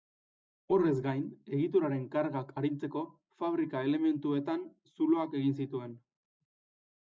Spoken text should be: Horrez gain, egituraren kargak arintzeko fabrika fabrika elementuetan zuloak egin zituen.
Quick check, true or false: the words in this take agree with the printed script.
false